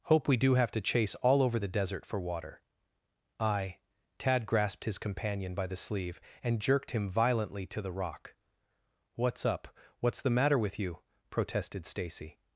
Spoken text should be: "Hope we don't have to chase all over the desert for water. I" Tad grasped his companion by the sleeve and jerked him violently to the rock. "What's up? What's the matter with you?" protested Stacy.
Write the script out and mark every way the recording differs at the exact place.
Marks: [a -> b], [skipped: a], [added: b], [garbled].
"Hope we [don't -> do] have to chase all over the desert for water. I" Tad grasped his companion by the sleeve and jerked him violently to the rock. "What's up? What's the matter with you?" protested Stacy.